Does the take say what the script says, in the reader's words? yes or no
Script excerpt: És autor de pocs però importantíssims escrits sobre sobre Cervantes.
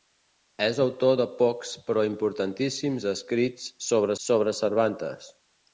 yes